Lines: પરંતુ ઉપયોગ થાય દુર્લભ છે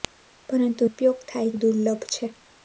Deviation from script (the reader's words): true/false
false